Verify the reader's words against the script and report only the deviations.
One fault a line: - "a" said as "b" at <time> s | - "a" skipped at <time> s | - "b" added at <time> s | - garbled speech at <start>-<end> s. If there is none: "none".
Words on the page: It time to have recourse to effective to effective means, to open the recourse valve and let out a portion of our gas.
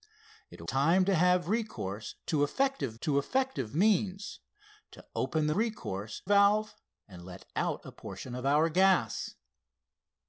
none